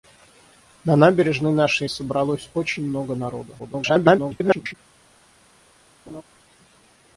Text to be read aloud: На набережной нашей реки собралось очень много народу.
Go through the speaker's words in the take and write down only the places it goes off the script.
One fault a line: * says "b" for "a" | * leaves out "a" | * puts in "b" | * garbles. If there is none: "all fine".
* leaves out "реки"
* garbles